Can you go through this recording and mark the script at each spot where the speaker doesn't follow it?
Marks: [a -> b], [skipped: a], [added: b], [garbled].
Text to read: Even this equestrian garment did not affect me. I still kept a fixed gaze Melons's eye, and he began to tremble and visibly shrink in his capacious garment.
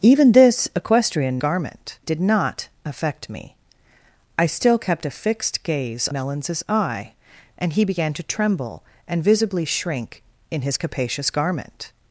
Even this equestrian garment did not affect me. I still kept a fixed gaze Melons's eye, and he began to tremble and visibly shrink in his capacious garment.